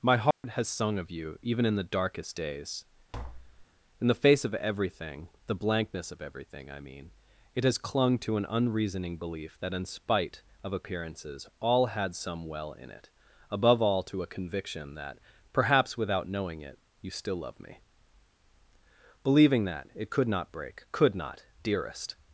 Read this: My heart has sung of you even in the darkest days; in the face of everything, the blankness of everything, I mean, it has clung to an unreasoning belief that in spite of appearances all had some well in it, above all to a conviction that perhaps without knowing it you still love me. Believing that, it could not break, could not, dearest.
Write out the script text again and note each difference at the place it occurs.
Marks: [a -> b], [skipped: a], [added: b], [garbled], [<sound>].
My heart [dropout] has sung of you even in the darkest days; [tap] in the face of everything, the blankness of everything, I mean, it has clung to an unreasoning belief that in spite of appearances all had some well in it, above all to a conviction that perhaps without knowing it you still love me. Believing that, it could not break, could not, dearest.